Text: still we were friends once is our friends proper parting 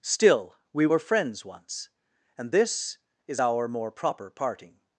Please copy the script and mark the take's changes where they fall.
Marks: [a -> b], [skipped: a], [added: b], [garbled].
still we were friends once [added: and this] is our [friends -> more] proper parting